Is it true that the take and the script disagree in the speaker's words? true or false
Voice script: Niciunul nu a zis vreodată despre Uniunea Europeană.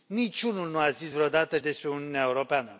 false